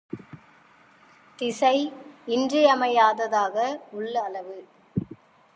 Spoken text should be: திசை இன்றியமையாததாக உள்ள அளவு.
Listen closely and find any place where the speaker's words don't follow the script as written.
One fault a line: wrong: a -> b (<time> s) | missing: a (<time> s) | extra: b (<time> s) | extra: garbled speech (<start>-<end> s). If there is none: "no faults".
no faults